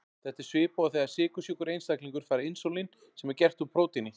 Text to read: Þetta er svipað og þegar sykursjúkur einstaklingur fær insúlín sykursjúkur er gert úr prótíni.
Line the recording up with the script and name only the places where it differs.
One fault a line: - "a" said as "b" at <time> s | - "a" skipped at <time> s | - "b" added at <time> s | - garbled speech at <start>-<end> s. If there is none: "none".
- "sykursjúkur" said as "sem" at 3.2 s